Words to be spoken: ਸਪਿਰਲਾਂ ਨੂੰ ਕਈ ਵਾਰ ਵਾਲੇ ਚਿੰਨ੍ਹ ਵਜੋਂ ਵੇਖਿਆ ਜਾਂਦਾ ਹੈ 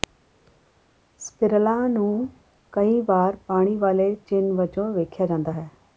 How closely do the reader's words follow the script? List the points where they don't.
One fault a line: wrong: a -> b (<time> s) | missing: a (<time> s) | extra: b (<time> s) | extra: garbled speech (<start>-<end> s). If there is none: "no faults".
extra: ਪਾਣੀ (3.5 s)